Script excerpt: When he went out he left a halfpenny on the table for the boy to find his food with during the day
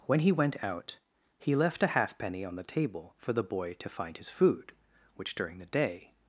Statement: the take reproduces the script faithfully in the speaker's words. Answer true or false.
false